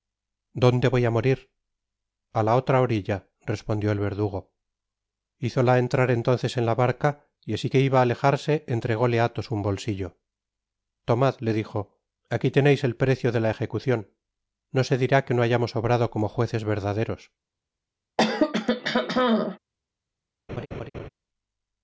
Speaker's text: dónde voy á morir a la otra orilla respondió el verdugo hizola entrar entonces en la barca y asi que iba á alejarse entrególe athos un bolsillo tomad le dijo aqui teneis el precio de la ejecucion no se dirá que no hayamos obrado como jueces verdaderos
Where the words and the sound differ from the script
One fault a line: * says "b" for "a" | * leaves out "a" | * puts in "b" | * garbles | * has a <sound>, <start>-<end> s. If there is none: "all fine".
* has a throat clearing, 18.2-19.6 s
* has a laugh, 20.5-21.1 s